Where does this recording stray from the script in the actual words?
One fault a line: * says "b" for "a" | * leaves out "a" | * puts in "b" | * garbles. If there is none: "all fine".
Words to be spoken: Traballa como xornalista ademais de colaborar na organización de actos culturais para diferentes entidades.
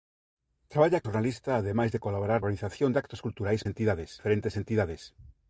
* leaves out "como"
* leaves out "na"
* says "entidades" for "para"